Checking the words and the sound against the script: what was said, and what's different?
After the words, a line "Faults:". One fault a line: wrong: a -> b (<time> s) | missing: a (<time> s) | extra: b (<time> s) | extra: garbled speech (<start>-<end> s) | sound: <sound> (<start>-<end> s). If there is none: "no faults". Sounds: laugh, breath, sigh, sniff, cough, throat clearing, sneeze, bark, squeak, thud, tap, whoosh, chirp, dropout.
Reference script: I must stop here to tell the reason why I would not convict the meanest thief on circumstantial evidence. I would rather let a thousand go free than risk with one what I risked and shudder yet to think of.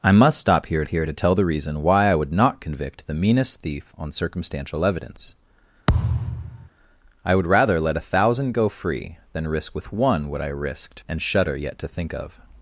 I must stop here here to tell the reason why I would not convict the meanest thief on circumstantial evidence. I would rather let a thousand go free than risk with one what I risked and shudder yet to think of.
Faults:
extra: here (0.9 s)
sound: thud (5.9-6.7 s)